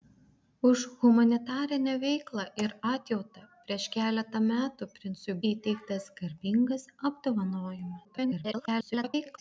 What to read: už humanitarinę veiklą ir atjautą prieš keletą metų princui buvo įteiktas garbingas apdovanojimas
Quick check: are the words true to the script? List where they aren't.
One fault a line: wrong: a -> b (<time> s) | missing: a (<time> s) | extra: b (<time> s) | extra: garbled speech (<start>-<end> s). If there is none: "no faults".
missing: buvo (5.4 s)
extra: garbled speech (8.0-9.4 s)